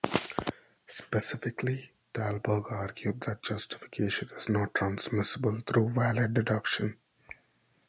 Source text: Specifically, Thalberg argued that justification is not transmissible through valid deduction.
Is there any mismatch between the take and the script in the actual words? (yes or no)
no